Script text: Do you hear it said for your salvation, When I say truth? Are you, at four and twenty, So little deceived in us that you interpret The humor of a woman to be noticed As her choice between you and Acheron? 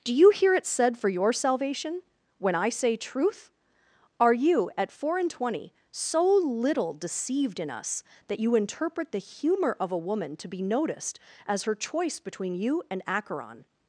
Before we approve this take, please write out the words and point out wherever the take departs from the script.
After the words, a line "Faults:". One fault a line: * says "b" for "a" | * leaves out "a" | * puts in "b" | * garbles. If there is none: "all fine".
Do you hear it said for your salvation, When I say truth? Are you, at four and twenty, So little deceived in us that you interpret The humor of a woman to be noticed As her choice between you and Acheron?
Faults:
all fine